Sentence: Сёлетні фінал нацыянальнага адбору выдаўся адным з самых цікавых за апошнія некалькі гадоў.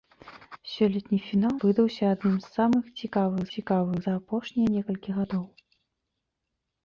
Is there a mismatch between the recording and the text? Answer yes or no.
yes